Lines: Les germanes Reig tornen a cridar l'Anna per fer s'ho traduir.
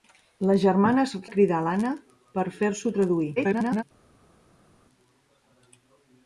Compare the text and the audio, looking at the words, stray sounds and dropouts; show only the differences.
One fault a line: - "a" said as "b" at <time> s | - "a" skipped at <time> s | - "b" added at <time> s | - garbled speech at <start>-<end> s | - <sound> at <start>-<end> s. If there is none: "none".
- "Reig tornen" skipped at 1.1 s
- garbled speech at 3.4-3.8 s